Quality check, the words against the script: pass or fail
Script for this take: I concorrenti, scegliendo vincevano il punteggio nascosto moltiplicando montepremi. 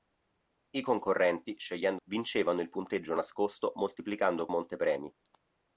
pass